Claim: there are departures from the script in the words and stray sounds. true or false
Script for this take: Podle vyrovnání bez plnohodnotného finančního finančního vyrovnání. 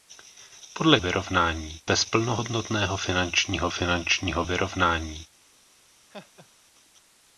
true